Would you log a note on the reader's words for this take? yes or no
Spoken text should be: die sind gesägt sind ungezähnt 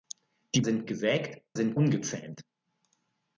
no